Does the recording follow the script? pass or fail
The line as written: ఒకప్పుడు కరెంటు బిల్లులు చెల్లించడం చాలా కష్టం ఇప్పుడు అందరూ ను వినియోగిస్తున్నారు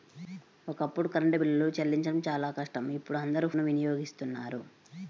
pass